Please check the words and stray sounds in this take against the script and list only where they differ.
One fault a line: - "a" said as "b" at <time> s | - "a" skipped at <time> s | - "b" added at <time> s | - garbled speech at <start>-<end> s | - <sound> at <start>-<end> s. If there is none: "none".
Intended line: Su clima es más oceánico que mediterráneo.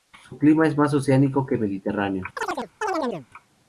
- chirp at 2.4-3.3 s